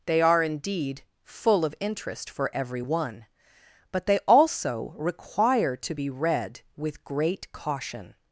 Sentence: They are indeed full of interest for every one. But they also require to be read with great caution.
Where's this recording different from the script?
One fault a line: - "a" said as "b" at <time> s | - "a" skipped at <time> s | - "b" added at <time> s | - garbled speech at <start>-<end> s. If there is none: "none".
none